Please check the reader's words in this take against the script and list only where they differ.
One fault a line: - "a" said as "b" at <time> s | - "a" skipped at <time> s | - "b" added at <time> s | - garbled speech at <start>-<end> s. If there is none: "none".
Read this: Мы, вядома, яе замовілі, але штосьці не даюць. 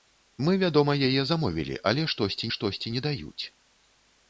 - "штосьці" added at 2.6 s